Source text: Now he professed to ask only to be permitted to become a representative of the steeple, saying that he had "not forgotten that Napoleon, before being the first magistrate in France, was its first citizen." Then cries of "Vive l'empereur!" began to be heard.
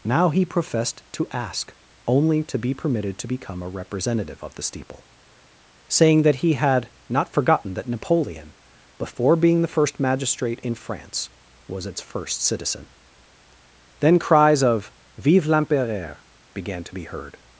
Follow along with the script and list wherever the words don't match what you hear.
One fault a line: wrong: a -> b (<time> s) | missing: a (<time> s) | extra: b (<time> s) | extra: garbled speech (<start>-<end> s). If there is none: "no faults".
no faults